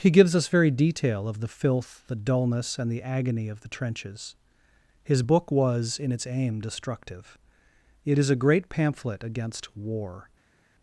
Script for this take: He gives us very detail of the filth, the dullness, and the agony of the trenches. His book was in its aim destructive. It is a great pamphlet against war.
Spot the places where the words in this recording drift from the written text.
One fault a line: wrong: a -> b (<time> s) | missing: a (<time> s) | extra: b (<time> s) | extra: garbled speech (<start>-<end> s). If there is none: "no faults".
no faults